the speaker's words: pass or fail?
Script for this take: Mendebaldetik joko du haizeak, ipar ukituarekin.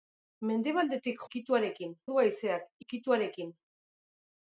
fail